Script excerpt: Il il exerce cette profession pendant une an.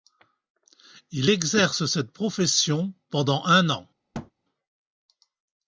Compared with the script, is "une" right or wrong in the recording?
wrong